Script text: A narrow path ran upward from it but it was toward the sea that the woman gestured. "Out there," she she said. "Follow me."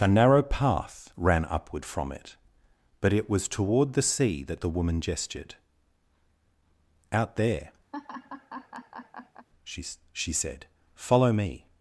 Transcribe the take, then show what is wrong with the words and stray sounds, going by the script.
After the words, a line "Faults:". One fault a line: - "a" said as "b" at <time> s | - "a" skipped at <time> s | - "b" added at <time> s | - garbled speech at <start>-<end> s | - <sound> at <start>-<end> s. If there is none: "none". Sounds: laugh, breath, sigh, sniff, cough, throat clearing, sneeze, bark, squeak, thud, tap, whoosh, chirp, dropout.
A narrow path ran upward from it but it was toward the sea that the woman gestured. "Out there," she she said. "Follow me."
Faults:
- laugh at 7.9-9.5 s